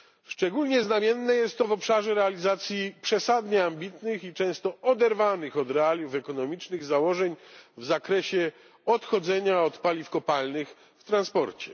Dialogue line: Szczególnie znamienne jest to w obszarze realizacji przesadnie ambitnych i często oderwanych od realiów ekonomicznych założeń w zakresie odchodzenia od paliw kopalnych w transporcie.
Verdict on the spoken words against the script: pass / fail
pass